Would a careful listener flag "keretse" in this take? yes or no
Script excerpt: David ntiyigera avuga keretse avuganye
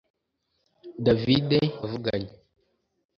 yes